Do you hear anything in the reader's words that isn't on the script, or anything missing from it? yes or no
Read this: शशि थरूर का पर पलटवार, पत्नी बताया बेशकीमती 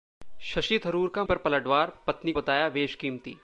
no